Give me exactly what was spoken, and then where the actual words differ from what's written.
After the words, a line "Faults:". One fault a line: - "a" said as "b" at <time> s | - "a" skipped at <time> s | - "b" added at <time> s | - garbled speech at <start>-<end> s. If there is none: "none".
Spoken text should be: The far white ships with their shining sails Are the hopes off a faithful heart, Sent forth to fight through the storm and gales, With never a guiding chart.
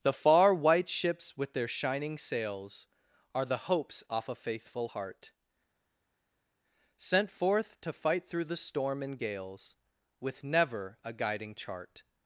The far white ships with their shining sails Are the hopes off a faithful heart, Sent forth to fight through the storm and gales, With never a guiding chart.
Faults:
none